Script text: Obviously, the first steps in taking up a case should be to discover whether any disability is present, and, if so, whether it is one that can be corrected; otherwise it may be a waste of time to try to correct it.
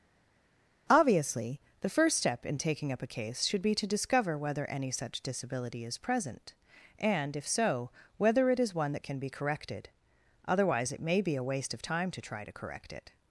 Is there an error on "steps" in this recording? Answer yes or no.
yes